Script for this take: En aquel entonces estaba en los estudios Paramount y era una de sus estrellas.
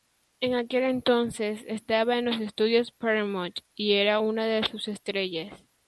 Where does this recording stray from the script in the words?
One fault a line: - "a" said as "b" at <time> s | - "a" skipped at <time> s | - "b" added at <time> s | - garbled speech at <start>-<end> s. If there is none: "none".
none